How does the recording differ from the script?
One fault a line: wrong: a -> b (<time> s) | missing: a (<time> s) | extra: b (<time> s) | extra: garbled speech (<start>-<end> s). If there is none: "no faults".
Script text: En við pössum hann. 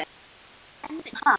missing: við pössum (1.0 s)